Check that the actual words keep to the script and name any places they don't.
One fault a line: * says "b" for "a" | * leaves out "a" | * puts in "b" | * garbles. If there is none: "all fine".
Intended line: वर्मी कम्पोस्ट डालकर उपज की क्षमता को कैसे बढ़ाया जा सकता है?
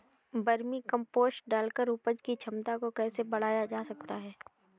all fine